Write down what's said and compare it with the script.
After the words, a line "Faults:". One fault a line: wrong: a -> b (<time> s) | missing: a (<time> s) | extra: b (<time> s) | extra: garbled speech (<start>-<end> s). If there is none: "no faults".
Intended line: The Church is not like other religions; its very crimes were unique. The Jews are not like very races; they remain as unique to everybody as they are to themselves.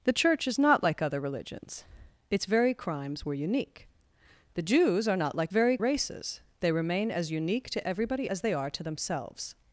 The Church is not like other religions; its very crimes were unique. The Jews are not like very races; they remain as unique to everybody as they are to themselves.
Faults:
no faults